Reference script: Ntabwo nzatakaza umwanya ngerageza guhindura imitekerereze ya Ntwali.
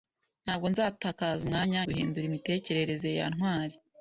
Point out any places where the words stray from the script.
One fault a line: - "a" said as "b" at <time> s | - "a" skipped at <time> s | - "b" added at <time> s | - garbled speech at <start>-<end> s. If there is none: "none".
- "ngerageza" skipped at 1.8 s